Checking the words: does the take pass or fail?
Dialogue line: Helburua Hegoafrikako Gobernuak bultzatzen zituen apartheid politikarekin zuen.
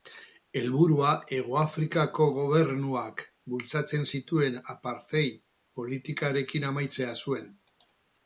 fail